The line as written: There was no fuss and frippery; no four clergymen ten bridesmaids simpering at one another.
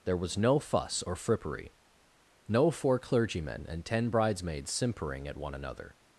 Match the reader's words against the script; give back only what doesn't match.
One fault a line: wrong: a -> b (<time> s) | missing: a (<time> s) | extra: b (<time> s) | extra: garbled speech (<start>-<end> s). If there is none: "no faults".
wrong: and -> or (1.0 s)
extra: and (3.7 s)